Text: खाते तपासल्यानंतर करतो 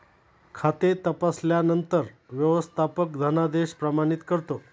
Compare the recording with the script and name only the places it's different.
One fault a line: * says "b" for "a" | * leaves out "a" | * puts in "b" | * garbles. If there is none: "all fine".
* puts in "व्यवस्थापक धनादेश प्रमाणित"